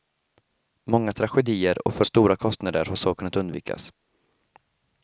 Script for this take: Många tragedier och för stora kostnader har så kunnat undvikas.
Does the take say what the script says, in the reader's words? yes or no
yes